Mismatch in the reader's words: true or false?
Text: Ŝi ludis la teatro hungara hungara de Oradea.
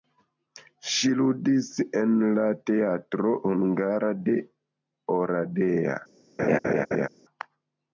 true